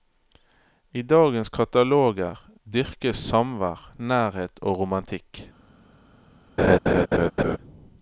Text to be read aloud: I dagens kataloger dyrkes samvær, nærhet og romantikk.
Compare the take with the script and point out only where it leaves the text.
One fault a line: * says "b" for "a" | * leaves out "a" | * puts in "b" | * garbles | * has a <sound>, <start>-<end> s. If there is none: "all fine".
* has a laugh, 6.6-7.6 s